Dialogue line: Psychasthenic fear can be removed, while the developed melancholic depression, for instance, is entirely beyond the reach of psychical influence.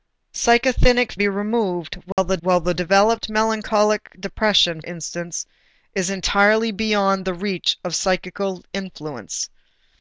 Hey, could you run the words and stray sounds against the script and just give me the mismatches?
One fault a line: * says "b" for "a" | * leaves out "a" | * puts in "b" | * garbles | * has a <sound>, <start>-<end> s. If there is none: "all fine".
* leaves out "fear can"
* has a dropout, 2.1-2.2 s
* puts in "while the"
* leaves out "for"